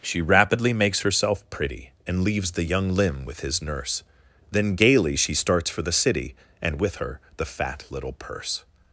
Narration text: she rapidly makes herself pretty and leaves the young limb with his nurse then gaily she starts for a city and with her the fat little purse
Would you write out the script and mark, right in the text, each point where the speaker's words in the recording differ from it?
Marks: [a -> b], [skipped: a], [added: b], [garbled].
she rapidly makes herself pretty and leaves the young limb with his nurse then gaily she starts for [a -> the] city and with her the fat little purse